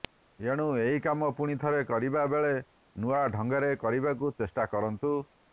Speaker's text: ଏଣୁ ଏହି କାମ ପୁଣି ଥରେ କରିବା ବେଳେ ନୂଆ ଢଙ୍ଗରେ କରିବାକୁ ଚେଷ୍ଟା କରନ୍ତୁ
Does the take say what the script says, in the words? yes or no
yes